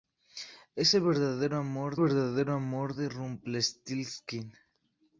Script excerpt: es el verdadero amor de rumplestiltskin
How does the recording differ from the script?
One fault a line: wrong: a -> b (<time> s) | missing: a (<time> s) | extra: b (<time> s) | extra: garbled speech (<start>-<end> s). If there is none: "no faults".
extra: verdadero amor (2.0 s)